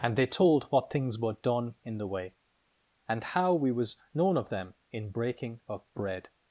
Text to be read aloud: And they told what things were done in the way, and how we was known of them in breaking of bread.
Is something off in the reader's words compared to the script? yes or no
no